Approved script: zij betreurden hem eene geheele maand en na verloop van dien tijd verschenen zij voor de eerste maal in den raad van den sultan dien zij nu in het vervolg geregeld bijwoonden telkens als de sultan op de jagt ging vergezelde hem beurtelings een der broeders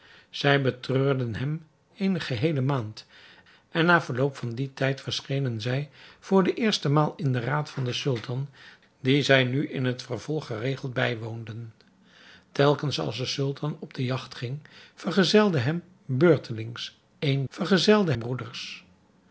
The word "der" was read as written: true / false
false